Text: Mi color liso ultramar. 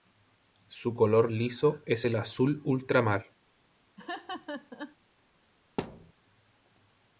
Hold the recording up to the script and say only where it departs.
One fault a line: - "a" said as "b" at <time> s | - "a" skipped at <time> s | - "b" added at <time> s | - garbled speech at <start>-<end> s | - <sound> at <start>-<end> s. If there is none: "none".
- "Mi" said as "Su" at 0.7 s
- "es el azul" added at 1.9 s
- laugh at 4.0-5.0 s
- thud at 5.8-6.1 s